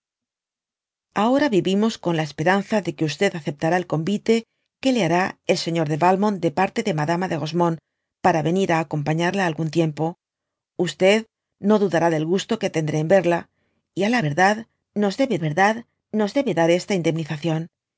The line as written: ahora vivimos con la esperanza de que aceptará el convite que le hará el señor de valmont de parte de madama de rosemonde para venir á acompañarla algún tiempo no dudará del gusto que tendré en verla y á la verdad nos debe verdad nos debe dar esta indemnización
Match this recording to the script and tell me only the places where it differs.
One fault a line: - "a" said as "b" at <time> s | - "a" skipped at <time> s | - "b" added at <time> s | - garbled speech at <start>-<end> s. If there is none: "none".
none